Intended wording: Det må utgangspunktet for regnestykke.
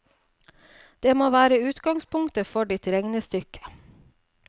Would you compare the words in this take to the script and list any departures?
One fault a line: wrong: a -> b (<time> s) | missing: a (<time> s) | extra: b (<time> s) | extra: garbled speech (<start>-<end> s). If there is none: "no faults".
extra: være (1.4 s)
extra: ditt (2.7 s)